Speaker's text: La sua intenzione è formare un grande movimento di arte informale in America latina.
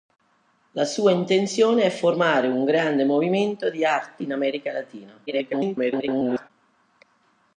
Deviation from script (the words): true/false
true